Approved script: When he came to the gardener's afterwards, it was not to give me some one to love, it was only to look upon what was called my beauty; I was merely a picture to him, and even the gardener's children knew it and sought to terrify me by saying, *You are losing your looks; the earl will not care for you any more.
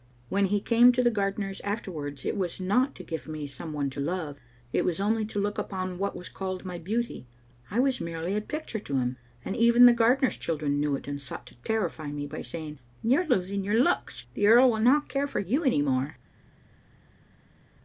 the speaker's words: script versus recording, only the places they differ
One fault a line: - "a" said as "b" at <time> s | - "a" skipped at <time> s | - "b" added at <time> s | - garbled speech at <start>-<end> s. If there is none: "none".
none